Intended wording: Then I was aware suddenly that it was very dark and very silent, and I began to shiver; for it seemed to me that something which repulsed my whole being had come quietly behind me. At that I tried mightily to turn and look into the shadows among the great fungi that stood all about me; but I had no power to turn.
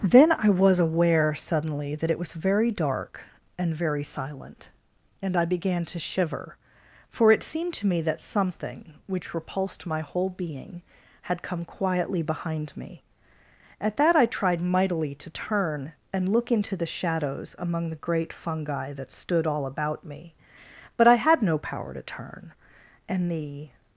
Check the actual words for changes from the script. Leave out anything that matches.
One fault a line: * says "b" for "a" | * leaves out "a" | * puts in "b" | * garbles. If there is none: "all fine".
* puts in "And the"